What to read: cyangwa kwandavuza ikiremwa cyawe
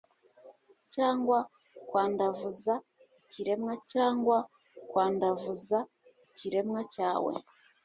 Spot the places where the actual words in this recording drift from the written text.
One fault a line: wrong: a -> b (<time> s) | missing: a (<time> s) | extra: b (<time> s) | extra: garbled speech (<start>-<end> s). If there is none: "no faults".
extra: cyangwa kwandavuza ikiremwa (3.9 s)